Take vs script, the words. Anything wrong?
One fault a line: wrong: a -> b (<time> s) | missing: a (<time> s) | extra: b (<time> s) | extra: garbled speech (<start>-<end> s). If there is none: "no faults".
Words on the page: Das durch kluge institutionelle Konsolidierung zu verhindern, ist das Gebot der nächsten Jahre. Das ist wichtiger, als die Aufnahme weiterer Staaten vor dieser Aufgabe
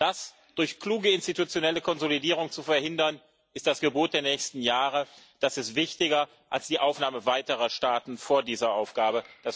no faults